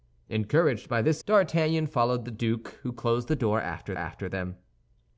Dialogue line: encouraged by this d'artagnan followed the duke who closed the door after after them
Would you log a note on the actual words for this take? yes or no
no